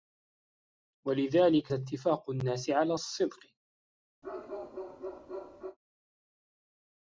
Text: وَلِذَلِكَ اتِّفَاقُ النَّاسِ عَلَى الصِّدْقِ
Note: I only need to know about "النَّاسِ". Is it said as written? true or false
true